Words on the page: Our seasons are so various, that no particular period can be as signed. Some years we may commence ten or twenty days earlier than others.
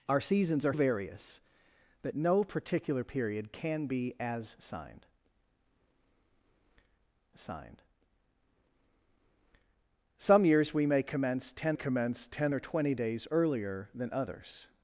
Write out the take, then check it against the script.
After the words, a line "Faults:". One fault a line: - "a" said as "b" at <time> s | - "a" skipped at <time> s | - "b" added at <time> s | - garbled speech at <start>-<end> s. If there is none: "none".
Our seasons are various, that no particular period can be as signed signed. Some years we may commence ten commence ten or twenty days earlier than others.
Faults:
- "so" skipped at 0.7 s
- "signed" added at 7.3 s
- "commence ten" added at 11.7 s